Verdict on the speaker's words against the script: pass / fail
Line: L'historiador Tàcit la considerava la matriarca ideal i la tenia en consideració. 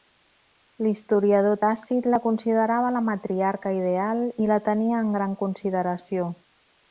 fail